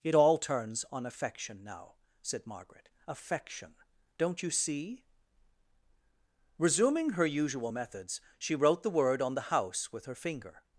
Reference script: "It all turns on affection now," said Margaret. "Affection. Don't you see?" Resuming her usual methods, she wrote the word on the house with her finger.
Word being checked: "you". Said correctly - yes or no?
yes